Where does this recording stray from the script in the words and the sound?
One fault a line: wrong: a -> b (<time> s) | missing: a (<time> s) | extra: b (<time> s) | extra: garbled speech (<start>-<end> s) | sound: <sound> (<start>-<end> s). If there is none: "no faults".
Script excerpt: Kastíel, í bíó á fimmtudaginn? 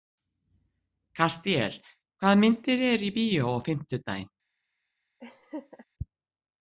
extra: hvaða myndir eru (2.2 s)
sound: laugh (5.2-5.9 s)